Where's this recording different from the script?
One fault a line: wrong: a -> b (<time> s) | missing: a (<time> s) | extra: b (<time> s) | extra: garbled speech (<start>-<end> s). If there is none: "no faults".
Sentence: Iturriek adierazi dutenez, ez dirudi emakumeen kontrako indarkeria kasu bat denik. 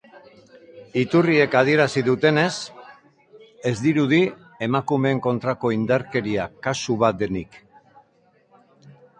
no faults